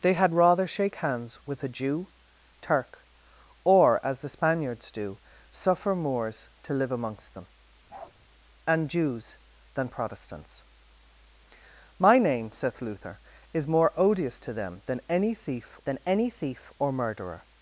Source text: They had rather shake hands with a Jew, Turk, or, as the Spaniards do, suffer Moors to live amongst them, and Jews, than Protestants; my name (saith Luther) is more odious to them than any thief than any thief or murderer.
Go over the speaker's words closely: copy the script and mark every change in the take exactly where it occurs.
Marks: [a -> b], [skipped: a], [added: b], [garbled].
They had rather shake hands with a Jew, Turk, or, as the Spaniards do, suffer Moors to live amongst them, and Jews, than Protestants; my name (saith Luther) is more odious to them than any thief than any thief or murderer.